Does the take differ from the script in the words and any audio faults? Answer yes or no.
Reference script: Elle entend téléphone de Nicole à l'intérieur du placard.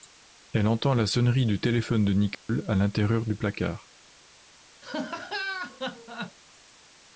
yes